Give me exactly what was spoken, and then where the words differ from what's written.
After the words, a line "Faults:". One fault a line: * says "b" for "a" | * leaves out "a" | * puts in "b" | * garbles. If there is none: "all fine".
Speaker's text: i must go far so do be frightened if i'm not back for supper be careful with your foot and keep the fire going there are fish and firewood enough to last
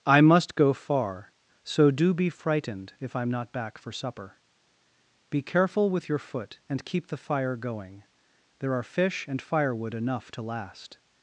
i must go far so do be frightened if i'm not back for supper be careful with your foot and keep the fire going there are fish and firewood enough to last
Faults:
all fine